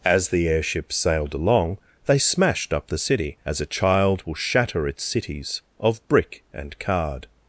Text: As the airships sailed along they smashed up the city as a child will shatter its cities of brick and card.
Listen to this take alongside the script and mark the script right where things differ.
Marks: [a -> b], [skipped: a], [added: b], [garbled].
As the airships sailed along they smashed up the city as a child will shatter its cities of brick and card.